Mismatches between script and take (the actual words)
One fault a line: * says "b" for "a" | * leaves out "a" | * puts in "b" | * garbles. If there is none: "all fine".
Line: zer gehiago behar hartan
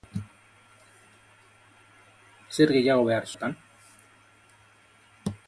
all fine